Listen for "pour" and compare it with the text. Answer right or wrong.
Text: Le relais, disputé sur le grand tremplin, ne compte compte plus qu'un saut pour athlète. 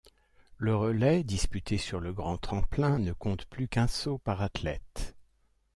wrong